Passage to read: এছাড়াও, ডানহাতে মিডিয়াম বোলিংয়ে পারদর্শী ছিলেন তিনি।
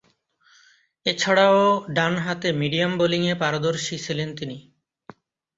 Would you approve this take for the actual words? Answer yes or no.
yes